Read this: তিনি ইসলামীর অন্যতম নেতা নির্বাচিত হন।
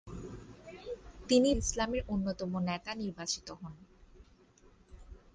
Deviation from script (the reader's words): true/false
false